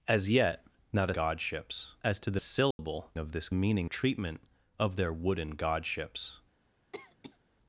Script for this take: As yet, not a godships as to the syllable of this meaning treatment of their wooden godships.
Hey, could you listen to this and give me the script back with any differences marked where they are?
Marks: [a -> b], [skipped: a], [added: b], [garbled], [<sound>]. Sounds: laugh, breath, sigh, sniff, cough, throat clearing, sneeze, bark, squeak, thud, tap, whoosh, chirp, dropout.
As yet, not a godships as to the syllable [dropout] of this meaning treatment of their wooden godships. [cough]